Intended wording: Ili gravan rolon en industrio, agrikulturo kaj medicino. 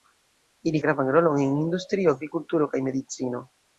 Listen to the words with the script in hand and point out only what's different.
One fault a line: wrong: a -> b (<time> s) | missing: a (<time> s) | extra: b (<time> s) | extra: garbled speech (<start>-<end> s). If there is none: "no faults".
no faults